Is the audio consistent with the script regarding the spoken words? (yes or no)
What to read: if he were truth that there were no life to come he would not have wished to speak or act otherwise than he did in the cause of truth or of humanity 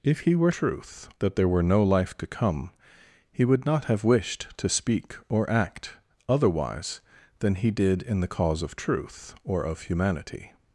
yes